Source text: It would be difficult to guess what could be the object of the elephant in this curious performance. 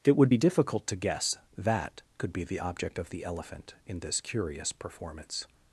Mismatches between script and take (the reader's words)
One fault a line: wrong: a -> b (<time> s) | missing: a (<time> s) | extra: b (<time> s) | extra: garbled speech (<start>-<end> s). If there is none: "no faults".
wrong: what -> that (1.6 s)